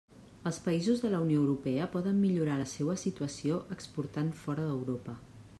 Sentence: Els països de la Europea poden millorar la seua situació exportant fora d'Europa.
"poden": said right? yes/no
yes